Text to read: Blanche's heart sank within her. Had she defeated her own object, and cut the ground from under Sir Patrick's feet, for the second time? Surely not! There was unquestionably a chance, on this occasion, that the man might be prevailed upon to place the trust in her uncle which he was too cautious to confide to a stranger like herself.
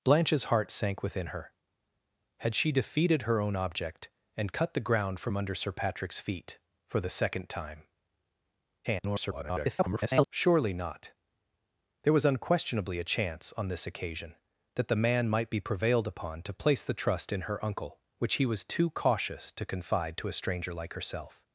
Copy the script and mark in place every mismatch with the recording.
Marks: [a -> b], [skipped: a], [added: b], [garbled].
Blanche's heart sank within her. Had she defeated her own object, and cut the ground from under Sir Patrick's feet, for the second time? [garbled] Surely not! There was unquestionably a chance, on this occasion, that the man might be prevailed upon to place the trust in her uncle which he was too cautious to confide to a stranger like herself.